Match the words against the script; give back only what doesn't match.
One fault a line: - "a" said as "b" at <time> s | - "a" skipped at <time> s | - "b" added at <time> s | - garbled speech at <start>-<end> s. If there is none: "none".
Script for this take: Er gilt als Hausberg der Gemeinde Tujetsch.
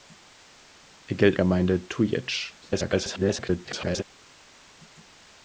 - "als Hausberg der" skipped at 1.4 s
- garbled speech at 2.6-4.0 s